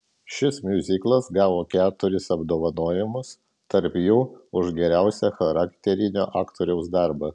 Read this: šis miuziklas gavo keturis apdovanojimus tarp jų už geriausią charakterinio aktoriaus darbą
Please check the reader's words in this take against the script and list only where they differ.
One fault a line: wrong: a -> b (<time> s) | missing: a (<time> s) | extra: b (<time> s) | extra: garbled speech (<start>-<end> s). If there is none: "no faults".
no faults